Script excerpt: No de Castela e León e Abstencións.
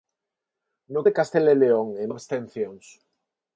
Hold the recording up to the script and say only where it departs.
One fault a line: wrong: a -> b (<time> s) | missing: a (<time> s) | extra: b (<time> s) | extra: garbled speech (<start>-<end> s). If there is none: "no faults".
no faults